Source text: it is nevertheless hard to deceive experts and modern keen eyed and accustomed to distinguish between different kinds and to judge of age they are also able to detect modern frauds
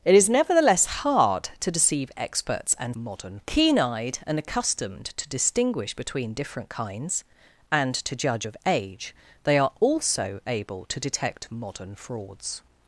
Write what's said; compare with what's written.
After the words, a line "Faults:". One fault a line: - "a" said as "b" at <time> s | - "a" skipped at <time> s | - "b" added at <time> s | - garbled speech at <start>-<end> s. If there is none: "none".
it is nevertheless hard to deceive experts and modern keen eyed and accustomed to distinguish between different kinds and to judge of age they are also able to detect modern frauds
Faults:
none